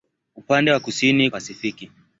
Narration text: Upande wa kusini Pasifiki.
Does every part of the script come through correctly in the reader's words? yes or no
yes